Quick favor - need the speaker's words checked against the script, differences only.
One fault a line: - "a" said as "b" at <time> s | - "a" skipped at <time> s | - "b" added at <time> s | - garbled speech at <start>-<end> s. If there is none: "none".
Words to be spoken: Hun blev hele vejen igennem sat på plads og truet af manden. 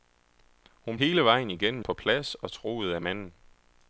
- "blev" skipped at 1.0 s
- "sat" skipped at 1.8 s